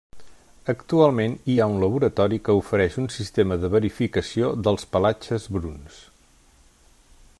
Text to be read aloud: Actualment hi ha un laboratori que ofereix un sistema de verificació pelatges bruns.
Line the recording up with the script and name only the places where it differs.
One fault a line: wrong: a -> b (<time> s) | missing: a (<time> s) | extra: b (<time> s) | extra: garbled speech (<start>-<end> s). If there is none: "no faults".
extra: dels (4.7 s)